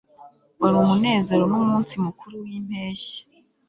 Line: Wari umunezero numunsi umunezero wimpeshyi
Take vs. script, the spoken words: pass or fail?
fail